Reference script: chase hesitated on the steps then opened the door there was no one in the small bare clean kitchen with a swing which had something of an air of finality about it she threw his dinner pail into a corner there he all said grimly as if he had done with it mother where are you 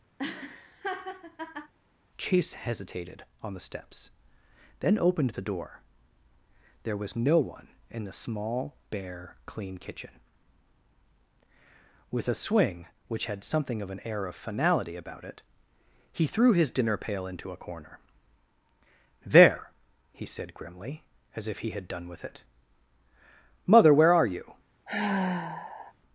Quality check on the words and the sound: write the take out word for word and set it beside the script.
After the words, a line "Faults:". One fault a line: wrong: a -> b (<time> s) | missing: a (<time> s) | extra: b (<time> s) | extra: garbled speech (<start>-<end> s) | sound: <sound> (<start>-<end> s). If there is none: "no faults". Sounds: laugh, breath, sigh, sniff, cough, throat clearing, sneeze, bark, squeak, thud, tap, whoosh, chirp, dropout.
chase hesitated on the steps then opened the door there was no one in the small bare clean kitchen with a swing which had something of an air of finality about it he threw his dinner pail into a corner there he said grimly as if he had done with it mother where are you
Faults:
sound: laugh (0.2-1.7 s)
wrong: she -> he (16.1 s)
missing: all (20.3 s)
sound: sigh (24.9-25.9 s)